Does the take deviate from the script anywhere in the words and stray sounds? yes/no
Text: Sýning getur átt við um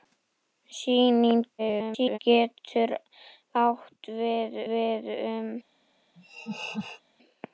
yes